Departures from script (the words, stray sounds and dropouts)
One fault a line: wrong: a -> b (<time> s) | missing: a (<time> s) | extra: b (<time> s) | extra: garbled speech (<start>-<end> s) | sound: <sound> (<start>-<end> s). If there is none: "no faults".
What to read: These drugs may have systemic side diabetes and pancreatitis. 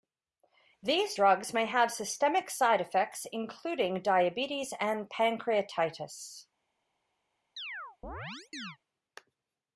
extra: effects including (2.8 s)
sound: chirp (7.6-8.8 s)